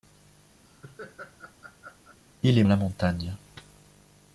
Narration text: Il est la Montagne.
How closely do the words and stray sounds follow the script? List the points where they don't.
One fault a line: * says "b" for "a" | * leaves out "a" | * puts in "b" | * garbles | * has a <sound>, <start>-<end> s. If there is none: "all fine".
* has a laugh, 0.6-2.2 s